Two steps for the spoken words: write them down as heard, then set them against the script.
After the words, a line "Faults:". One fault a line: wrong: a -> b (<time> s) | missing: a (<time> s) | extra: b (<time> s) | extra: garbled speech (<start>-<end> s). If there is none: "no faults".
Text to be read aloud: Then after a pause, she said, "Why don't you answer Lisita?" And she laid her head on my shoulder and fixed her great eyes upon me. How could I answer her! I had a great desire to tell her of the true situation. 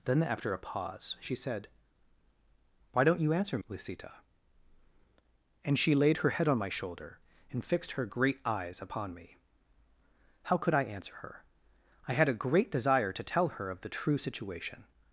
Then after a pause, she said, "Why don't you answer Lisita?" And she laid her head on my shoulder and fixed her great eyes upon me. How could I answer her! I had a great desire to tell her of the true situation.
Faults:
no faults